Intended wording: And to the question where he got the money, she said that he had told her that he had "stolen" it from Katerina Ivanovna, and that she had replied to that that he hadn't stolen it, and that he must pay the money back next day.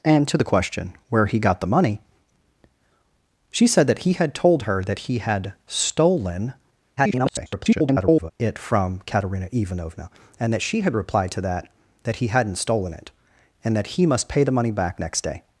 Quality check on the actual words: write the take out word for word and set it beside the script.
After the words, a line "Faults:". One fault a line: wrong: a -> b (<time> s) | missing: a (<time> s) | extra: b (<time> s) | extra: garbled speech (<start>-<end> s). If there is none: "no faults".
And to the question where he got the money, she said that he had told her that he had "stolen" [garbled] it from Katerina Ivanovna, and that she had replied to that that he hadn't stolen it, and that he must pay the money back next day.
Faults:
extra: garbled speech (7.0-8.3 s)